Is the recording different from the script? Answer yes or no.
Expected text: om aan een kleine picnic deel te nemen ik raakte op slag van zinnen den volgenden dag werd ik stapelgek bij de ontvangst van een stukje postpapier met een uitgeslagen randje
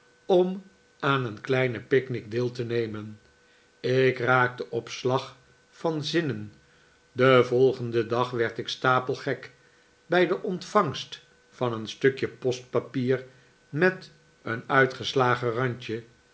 no